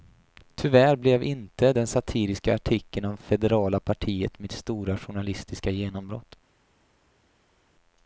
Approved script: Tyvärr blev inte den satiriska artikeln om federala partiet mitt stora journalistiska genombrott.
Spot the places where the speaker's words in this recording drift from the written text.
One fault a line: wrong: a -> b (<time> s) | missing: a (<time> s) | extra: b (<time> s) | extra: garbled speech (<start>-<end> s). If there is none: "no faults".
no faults